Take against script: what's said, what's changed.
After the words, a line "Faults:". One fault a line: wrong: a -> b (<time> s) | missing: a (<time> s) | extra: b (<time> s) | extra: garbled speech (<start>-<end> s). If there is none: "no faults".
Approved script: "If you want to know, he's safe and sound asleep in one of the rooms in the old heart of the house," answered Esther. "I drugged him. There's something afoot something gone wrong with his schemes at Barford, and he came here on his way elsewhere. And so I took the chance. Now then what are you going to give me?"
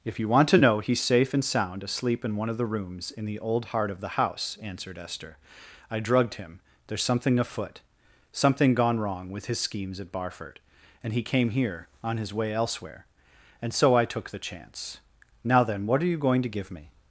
"If you want to know, he's safe and sound asleep in one of the rooms in the old heart of the house," answered Esther. "I drugged him. There's something afoot something gone wrong with his schemes at Barford, and he came here on his way elsewhere. And so I took the chance. Now then what are you going to give me?"
Faults:
no faults